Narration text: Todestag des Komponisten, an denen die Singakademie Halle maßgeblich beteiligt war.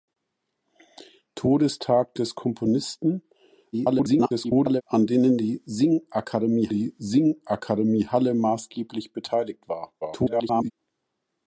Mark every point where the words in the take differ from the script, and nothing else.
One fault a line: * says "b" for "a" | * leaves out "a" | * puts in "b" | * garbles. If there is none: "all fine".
* garbles
* puts in "die Singakademie"
* garbles